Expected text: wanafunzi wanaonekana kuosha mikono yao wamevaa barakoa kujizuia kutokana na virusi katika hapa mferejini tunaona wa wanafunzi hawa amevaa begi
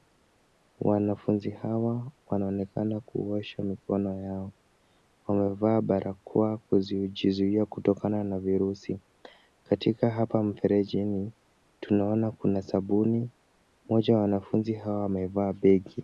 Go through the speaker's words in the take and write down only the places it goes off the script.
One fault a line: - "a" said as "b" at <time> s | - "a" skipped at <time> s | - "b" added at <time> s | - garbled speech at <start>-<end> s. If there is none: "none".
- "hawa" added at 1.5 s
- "kuna sabuni mmoja" added at 12.3 s